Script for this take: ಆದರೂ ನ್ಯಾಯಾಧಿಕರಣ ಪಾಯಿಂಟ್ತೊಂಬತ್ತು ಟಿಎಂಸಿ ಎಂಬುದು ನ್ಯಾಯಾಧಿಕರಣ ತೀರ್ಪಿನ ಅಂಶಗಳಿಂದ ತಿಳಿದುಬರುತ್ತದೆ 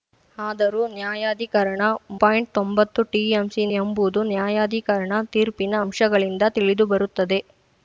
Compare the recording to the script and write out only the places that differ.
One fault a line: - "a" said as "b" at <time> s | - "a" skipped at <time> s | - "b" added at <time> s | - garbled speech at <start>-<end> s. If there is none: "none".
none